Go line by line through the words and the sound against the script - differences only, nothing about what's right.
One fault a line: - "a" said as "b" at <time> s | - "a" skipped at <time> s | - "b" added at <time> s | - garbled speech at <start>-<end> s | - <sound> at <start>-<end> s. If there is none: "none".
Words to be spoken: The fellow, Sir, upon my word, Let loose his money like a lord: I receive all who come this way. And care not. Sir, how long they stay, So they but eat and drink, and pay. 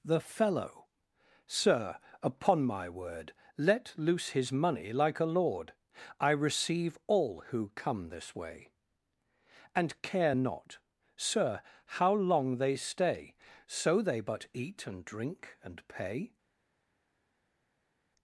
none